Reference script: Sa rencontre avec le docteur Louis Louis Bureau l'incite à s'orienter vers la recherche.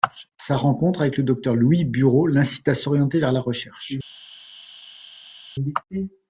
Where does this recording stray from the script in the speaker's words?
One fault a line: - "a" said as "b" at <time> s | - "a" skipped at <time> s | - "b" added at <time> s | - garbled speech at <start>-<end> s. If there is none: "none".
- "Louis" skipped at 1.9 s